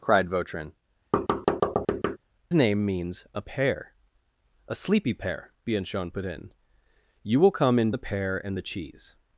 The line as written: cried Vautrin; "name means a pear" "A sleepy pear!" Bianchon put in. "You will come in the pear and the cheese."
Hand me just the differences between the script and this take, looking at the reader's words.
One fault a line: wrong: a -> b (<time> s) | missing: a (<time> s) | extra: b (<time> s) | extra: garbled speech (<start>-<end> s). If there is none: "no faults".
no faults